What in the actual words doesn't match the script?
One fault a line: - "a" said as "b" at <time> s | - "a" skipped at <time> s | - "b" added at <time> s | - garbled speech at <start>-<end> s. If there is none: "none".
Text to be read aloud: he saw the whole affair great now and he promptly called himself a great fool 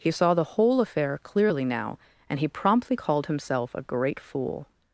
- "great" said as "clearly" at 1.2 s